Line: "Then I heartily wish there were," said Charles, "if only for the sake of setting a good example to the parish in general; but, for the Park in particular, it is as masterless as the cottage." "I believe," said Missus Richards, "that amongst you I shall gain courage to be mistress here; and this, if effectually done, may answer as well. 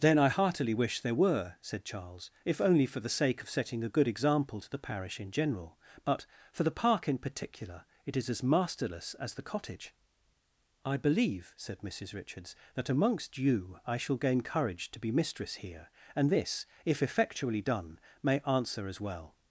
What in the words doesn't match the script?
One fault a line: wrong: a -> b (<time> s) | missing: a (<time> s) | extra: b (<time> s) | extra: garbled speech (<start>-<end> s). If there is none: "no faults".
no faults